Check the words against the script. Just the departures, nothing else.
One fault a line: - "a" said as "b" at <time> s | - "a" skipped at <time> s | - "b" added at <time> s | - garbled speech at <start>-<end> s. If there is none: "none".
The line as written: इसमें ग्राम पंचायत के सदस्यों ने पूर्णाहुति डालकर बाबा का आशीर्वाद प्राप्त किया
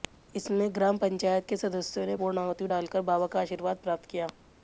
none